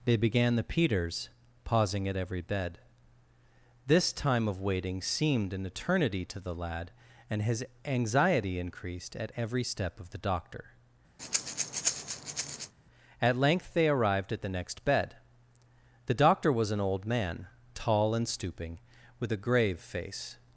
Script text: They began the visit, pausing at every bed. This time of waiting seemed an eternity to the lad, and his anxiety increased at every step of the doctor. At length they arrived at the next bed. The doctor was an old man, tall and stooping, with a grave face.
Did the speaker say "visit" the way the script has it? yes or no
no